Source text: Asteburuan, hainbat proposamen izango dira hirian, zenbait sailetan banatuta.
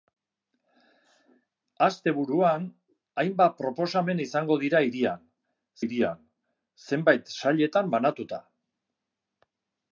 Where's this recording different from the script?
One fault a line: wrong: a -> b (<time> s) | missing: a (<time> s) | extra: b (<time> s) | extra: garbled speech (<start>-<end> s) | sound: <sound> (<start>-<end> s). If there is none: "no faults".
extra: hirian (5.8 s)